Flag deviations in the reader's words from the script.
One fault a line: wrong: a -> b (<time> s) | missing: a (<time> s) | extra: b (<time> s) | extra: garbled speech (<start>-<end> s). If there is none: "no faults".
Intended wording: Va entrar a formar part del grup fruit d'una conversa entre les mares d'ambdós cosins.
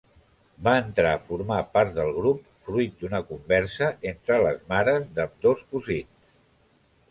no faults